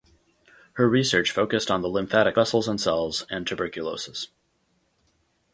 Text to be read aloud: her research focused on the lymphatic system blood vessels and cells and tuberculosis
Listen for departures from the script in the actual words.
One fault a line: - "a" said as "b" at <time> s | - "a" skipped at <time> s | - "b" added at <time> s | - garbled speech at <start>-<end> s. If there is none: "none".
- "system blood" skipped at 2.4 s